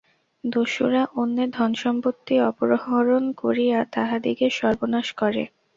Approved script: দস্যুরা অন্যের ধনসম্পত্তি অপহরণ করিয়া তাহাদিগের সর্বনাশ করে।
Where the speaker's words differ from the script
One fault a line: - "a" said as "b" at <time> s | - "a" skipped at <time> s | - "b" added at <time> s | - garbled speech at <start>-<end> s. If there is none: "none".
none